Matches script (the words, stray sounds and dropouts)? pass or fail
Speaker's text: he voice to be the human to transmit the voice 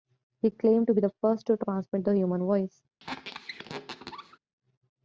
fail